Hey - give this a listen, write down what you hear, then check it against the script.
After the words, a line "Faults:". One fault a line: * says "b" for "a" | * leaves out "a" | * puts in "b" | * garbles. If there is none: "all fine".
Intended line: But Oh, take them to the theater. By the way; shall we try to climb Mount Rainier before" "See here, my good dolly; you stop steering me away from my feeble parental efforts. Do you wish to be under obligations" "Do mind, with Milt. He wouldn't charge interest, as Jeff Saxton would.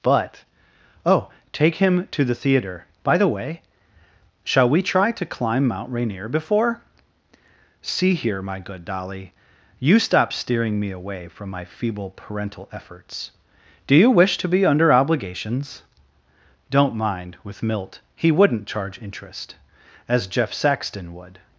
But Oh, take him to the theater. By the way; shall we try to climb Mount Rainier before" "See here, my good dolly; you stop steering me away from my feeble parental efforts. Do you wish to be under obligations" "Don't mind, with Milt. He wouldn't charge interest, as Jeff Saxton would.
Faults:
* says "him" for "them"
* says "Don't" for "Do"